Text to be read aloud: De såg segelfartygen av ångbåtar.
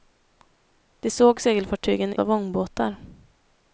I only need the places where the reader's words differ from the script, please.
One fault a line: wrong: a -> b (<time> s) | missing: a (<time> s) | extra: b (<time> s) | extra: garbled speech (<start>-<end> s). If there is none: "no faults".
no faults